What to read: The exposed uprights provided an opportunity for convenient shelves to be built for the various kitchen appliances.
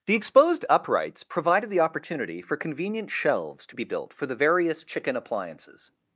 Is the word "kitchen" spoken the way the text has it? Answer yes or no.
no